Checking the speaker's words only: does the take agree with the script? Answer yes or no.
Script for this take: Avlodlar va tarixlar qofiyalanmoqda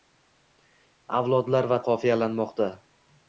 no